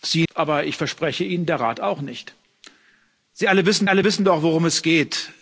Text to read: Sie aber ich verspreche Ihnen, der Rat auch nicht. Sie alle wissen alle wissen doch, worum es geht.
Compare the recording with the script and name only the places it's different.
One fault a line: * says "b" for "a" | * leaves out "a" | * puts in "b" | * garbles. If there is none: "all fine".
all fine